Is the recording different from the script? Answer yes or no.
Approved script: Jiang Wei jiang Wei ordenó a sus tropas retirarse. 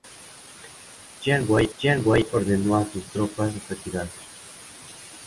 no